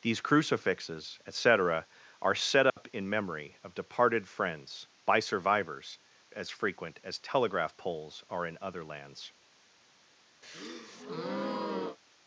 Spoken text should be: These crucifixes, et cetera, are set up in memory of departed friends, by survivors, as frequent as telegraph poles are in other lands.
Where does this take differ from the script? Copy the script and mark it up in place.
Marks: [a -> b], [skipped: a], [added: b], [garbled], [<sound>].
These crucifixes, et cetera, are set up [dropout] in memory of departed friends, by survivors, as frequent as telegraph poles are in other lands. [breath]